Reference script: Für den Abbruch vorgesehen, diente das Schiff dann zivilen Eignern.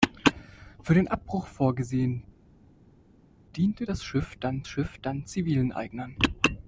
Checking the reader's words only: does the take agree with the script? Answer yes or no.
no